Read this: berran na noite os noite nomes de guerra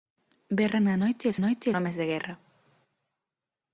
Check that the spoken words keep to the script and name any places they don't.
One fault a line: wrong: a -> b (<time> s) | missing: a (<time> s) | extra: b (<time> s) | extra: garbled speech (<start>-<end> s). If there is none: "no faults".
no faults